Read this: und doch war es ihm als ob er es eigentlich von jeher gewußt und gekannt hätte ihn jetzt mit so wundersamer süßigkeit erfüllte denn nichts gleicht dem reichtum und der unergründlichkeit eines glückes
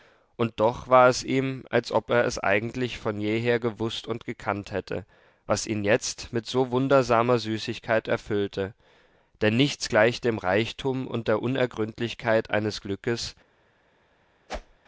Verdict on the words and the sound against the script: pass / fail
fail